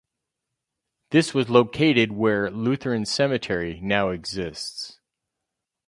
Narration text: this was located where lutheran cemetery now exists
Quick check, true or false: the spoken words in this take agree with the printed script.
true